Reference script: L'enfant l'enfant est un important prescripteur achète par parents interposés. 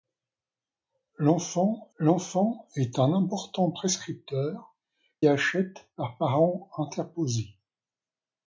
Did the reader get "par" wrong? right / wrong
right